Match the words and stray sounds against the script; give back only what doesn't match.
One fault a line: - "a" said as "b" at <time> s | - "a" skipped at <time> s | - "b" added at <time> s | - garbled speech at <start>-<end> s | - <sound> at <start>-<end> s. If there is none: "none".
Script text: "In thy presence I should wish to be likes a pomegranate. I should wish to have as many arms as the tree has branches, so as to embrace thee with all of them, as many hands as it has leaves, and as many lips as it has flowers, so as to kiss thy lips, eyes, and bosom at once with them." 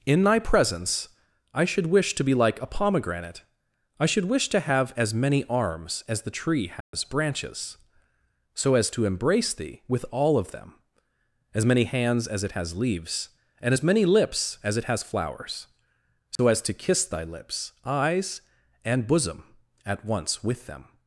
- "likes" said as "like" at 2.3 s
- dropout at 6.8-6.9 s
- dropout at 16.4-16.4 s